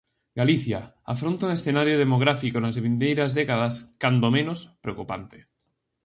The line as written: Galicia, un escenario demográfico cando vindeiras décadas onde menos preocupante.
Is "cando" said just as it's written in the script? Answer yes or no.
no